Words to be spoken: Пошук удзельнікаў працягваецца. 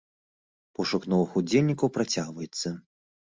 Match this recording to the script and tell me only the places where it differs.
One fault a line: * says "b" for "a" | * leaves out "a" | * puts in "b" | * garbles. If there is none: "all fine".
* puts in "новых"